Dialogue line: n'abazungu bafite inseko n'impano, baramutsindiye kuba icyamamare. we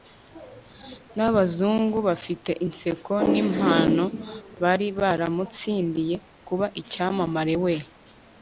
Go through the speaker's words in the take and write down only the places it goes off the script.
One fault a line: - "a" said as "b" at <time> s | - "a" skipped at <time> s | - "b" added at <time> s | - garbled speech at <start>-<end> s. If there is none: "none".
- "bari" added at 4.6 s